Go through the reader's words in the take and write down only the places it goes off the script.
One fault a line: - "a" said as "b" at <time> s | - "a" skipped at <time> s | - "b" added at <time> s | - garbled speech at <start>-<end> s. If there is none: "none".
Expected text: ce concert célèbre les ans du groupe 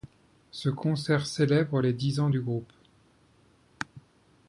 - "dix" added at 1.9 s